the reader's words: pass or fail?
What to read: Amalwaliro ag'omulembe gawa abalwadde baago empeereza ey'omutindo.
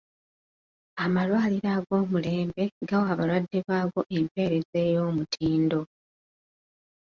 pass